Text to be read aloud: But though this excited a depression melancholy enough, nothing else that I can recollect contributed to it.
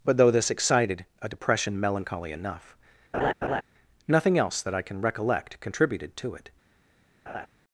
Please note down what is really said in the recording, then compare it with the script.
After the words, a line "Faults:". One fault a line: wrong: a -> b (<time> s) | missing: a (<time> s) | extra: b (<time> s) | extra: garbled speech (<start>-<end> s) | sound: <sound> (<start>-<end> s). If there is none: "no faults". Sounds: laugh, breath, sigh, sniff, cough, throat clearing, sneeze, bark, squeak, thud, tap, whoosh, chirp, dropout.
But though this excited a depression melancholy enough, nothing else that I can recollect contributed to it.
Faults:
sound: laugh (3.1-3.6 s)
sound: laugh (7.3-7.5 s)